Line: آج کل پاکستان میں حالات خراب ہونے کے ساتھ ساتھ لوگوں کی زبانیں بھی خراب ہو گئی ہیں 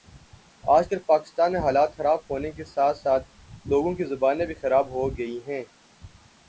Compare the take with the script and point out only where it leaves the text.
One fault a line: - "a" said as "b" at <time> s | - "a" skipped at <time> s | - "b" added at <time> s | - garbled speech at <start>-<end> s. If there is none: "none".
none